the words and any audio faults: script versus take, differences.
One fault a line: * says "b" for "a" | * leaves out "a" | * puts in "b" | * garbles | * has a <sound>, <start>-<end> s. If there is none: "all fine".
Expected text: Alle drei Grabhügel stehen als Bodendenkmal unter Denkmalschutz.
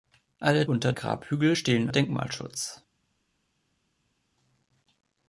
* says "unter" for "drei"
* leaves out "als Bodendenkmal unter"